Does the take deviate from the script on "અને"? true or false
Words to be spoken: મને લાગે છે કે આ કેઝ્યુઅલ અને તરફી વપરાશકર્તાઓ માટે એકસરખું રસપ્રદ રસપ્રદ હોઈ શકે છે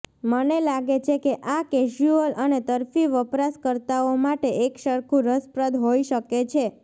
false